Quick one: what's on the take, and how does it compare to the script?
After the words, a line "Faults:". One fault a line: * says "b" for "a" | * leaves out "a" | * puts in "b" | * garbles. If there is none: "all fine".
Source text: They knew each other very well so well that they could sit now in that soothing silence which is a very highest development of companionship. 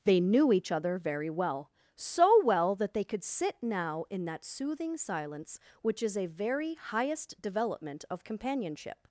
They knew each other very well so well that they could sit now in that soothing silence which is a very highest development of companionship.
Faults:
all fine